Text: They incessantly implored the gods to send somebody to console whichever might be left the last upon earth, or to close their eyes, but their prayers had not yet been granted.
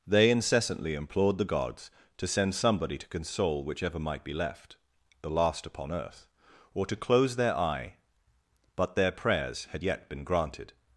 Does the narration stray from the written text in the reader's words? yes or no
yes